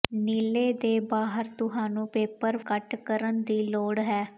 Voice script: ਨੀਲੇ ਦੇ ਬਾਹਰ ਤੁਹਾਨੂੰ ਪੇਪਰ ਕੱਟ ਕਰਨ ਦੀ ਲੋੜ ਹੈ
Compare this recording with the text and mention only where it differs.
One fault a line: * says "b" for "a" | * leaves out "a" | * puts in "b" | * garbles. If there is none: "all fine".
all fine